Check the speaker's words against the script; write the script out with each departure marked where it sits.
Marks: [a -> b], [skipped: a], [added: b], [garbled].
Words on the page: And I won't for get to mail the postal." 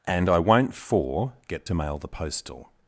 And I won't for get to mail the postal."